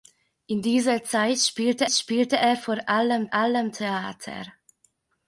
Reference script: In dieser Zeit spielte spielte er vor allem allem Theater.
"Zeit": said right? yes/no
yes